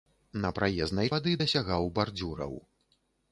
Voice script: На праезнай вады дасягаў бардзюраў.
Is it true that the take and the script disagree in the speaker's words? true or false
false